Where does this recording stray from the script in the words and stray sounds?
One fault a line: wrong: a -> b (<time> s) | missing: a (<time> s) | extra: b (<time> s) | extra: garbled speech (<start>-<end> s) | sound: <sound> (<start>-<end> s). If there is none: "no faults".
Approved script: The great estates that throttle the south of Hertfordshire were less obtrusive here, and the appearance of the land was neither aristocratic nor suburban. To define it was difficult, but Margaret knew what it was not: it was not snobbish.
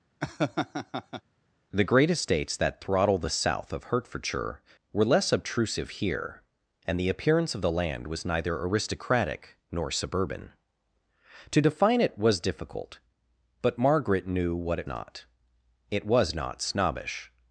sound: laugh (0.2-1.2 s)
missing: was (14.9 s)